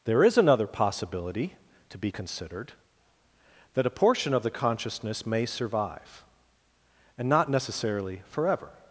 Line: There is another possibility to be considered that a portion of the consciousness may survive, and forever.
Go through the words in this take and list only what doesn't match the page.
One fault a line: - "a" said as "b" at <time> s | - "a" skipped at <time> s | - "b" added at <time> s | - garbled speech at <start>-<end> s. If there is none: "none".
- "not necessarily" added at 7.3 s